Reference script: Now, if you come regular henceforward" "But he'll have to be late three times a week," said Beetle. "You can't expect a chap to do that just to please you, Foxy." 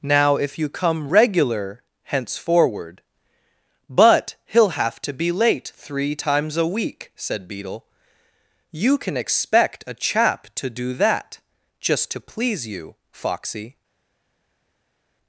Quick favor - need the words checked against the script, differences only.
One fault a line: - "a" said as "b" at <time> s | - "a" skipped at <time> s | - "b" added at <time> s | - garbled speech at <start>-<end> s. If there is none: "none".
- "can't" said as "can" at 9.0 s